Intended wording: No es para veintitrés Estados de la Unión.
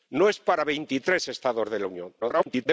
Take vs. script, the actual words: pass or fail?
fail